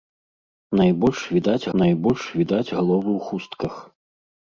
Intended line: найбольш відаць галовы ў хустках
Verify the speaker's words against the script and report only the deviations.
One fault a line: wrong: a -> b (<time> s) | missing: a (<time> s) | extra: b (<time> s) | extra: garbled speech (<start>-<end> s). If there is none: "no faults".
extra: найбольш відаць (1.8 s)